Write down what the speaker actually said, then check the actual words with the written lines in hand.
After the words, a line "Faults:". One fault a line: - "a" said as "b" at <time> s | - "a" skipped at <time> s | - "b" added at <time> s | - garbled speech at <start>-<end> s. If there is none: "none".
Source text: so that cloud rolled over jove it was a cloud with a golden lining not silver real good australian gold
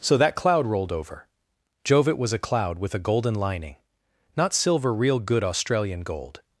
so that cloud rolled over jove it was a cloud with a golden lining not silver real good australian gold
Faults:
none